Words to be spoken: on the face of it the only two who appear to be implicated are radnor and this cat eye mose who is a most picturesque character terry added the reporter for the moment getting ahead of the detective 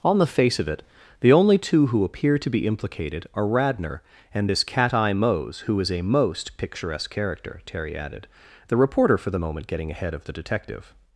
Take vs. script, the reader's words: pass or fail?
pass